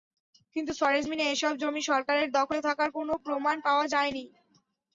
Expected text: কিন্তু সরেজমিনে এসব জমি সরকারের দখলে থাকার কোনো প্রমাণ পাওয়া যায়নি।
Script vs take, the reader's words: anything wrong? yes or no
no